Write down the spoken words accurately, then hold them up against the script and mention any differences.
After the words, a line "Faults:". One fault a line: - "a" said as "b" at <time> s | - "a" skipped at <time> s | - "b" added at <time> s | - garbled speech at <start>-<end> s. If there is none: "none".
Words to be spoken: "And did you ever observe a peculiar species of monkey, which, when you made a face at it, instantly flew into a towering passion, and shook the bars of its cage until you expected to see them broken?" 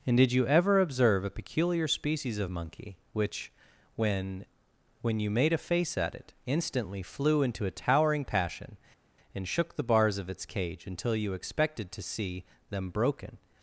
"And did you ever observe a peculiar species of monkey, which, when when you made a face at it, instantly flew into a towering passion, and shook the bars of its cage until you expected to see them broken?"
Faults:
- "when" added at 5.0 s